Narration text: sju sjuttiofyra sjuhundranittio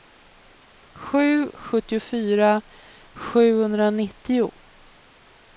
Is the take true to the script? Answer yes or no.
yes